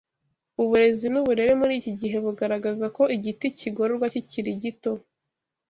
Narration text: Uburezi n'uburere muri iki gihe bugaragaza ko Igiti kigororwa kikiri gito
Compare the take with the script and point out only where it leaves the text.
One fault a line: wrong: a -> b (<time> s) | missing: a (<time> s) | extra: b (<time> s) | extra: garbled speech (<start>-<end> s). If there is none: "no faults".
no faults